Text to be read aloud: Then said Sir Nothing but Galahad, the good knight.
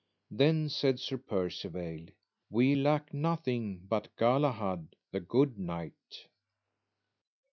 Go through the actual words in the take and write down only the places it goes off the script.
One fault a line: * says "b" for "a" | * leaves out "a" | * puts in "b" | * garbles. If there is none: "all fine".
* puts in "Percivale We lack"